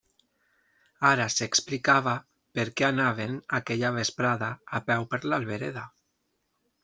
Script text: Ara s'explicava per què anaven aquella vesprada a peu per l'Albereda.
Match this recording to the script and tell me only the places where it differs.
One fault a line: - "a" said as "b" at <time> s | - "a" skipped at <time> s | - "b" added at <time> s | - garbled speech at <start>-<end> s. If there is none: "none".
none